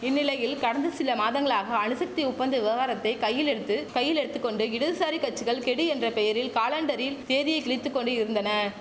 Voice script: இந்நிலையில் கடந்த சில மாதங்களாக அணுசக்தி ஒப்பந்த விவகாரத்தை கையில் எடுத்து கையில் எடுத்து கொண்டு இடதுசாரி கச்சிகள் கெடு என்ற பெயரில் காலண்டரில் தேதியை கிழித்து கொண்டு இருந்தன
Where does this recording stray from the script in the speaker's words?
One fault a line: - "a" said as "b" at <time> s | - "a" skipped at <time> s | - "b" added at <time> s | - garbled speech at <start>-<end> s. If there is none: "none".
none